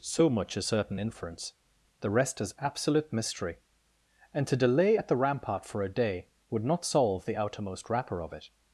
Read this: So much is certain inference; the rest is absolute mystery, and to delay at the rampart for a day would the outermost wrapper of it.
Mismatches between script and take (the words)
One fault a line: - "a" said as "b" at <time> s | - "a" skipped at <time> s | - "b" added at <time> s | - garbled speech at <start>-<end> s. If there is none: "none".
- "not solve" added at 6.6 s